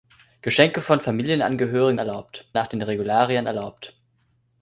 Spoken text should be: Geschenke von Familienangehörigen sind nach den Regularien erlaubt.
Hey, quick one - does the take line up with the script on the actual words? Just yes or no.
no